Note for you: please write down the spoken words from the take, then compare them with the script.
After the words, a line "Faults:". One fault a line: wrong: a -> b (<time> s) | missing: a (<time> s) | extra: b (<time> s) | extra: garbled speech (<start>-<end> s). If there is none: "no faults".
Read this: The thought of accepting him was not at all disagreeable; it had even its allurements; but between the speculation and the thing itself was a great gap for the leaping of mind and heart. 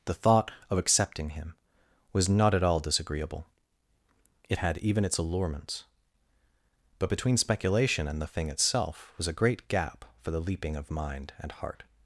The thought of accepting him was not at all disagreeable; it had even its allurements; but between speculation and the thing itself was a great gap for the leaping of mind and heart.
Faults:
missing: the (7.4 s)